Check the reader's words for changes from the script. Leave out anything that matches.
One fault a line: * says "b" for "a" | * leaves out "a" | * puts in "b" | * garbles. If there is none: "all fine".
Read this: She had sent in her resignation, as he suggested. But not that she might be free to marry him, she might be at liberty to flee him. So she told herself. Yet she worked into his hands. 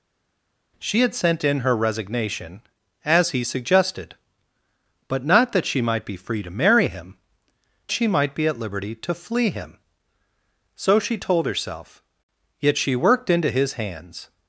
all fine